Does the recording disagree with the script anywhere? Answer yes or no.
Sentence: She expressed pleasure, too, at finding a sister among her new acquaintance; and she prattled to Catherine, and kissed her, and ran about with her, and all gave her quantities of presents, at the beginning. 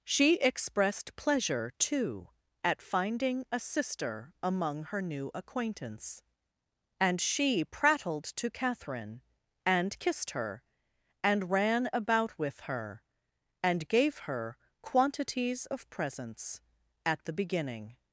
yes